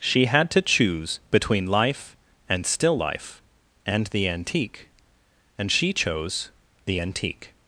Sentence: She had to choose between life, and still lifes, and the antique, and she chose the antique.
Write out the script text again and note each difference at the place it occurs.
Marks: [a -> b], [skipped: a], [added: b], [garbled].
She had to choose between life, and still [lifes, -> life] and the antique, and she chose the antique.